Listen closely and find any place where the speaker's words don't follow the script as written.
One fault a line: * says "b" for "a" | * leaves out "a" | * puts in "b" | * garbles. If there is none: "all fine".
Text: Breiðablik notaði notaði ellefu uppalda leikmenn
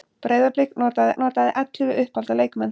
all fine